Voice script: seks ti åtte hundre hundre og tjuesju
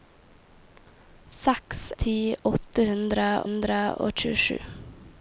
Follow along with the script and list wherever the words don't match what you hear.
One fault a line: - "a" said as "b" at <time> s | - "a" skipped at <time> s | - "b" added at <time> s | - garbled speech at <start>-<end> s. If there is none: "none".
none